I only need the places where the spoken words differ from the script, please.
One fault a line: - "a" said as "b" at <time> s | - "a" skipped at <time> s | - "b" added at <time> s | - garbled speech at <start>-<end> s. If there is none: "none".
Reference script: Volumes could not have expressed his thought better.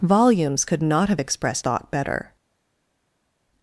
- "his" skipped at 1.6 s